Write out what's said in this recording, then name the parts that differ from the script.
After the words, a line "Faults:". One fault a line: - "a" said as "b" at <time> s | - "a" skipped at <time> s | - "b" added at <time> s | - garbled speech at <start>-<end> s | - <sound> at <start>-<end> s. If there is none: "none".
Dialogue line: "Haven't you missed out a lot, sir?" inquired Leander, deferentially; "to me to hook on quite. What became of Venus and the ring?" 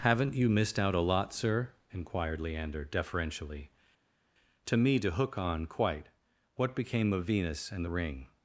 "Haven't you missed out a lot, sir?" inquired Leander, deferentially; "to me to hook on quite. What became of Venus and the ring?"
Faults:
none